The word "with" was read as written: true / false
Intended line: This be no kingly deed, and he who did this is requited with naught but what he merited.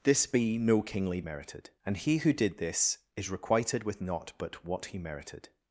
true